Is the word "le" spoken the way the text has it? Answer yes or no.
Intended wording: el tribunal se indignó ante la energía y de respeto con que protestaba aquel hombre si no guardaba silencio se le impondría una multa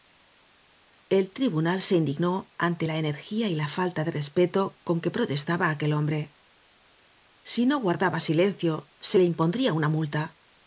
yes